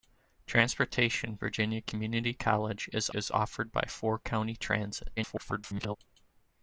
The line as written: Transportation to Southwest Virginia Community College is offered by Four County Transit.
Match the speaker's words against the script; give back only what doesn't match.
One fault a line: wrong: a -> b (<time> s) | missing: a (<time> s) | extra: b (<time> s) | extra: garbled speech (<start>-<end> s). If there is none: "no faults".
missing: to Southwest (1.4 s)
extra: is (3.1 s)
extra: garbled speech (5.2-6.0 s)